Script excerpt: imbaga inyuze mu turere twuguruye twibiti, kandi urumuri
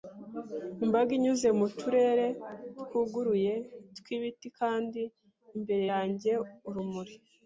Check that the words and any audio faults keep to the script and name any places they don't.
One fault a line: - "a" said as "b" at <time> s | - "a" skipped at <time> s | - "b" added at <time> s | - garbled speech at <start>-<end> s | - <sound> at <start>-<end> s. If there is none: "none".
- "imbere yanjye" added at 5.6 s